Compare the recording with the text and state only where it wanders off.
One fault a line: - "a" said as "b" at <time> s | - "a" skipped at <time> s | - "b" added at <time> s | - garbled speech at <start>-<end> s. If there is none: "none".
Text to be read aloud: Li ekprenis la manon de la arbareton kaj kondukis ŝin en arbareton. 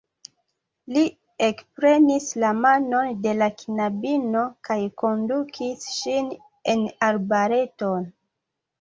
- "arbareton" said as "knabino" at 3.6 s